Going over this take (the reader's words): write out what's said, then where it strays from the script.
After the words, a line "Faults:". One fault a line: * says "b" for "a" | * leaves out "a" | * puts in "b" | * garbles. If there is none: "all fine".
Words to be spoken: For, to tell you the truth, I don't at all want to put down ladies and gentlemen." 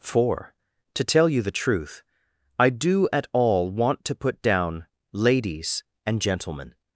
For, to tell you the truth, I do at all want to put down ladies and gentlemen."
Faults:
* says "do" for "don't"